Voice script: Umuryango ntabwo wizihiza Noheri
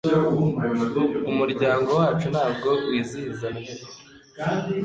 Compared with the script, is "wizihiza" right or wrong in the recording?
right